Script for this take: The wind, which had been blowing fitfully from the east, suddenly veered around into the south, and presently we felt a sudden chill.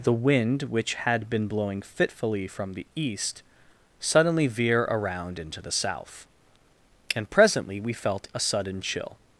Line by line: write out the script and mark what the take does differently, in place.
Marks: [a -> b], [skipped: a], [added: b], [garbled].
The wind, which had been blowing fitfully from the east, suddenly [veered -> veer] around into the south, and presently we felt a sudden chill.